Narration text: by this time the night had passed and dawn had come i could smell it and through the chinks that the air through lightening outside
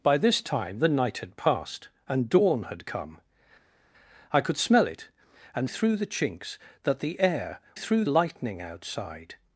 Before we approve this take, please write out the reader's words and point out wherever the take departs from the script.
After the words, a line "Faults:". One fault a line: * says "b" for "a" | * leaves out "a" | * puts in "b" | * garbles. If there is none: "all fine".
by this time the night had passed and dawn had come i could smell it and through the chinks that the air through lightening outside
Faults:
all fine